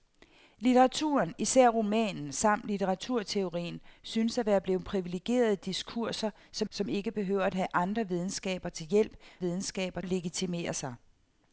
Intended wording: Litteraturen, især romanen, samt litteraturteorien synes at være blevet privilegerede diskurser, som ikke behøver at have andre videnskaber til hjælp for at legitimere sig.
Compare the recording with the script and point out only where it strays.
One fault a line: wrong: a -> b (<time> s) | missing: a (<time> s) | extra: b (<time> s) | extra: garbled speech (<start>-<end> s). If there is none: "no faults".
extra: som (6.7 s)
wrong: for -> videnskaber (9.4 s)